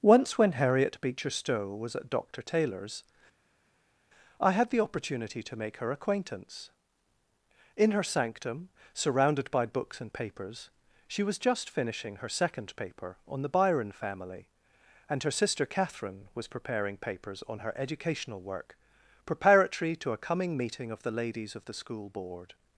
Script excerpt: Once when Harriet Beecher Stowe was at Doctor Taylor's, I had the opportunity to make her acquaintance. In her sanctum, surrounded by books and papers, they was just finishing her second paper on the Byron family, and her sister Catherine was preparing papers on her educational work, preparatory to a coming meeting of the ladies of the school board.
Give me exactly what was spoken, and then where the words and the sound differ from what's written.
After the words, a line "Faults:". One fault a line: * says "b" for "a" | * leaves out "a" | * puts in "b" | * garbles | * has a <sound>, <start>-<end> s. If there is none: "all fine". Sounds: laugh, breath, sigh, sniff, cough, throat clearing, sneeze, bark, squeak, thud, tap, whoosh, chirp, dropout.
Once when Harriet Beecher Stowe was at Doctor Taylor's, I had the opportunity to make her acquaintance. In her sanctum, surrounded by books and papers, she was just finishing her second paper on the Byron family, and her sister Catherine was preparing papers on her educational work, preparatory to a coming meeting of the ladies of the school board.
Faults:
* says "she" for "they"